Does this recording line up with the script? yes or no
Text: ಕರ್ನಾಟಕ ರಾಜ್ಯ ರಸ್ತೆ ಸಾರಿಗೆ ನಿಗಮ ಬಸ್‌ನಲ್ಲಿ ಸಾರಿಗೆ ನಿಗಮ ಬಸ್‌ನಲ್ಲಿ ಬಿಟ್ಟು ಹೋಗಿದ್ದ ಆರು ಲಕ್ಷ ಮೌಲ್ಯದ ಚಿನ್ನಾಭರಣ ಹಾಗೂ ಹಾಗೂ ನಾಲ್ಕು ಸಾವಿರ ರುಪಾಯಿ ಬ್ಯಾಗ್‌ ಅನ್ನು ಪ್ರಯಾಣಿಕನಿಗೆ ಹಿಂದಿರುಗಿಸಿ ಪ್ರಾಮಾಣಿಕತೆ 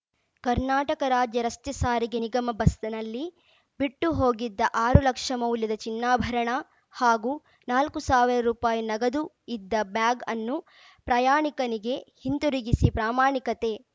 no